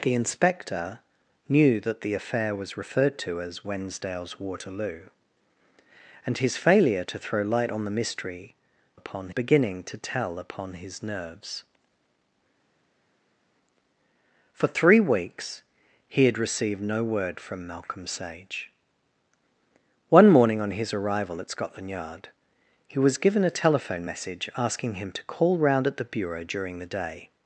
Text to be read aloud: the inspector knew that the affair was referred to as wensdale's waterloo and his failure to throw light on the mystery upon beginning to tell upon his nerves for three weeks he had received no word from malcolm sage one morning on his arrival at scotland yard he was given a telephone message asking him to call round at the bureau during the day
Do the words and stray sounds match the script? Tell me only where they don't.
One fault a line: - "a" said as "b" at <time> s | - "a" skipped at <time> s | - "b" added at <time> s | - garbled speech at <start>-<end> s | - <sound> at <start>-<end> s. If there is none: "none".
none